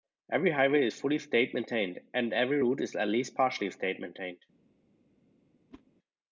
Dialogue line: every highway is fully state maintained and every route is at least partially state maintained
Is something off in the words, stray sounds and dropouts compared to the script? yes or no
yes